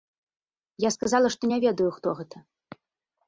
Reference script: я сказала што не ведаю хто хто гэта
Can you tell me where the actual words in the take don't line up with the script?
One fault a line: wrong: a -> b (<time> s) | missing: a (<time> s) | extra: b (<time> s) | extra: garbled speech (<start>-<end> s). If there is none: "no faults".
missing: хто (2.2 s)